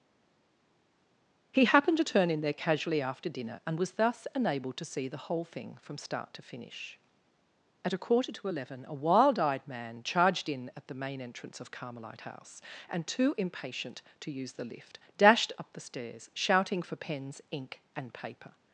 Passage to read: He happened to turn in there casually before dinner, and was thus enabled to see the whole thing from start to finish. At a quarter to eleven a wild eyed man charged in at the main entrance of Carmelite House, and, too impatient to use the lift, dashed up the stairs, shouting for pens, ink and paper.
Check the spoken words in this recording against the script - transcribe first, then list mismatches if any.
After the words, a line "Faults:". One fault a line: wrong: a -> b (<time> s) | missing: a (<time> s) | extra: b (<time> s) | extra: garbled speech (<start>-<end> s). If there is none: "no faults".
He happened to turn in there casually after dinner, and was thus enabled to see the whole thing from start to finish. At a quarter to eleven a wild eyed man charged in at the main entrance of Carmelite House, and, too impatient to use the lift, dashed up the stairs, shouting for pens, ink and paper.
Faults:
wrong: before -> after (3.0 s)